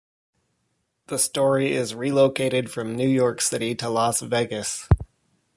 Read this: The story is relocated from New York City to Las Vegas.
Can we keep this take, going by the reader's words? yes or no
yes